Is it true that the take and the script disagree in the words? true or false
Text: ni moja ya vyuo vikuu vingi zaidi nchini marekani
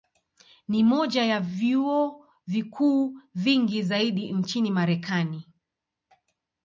false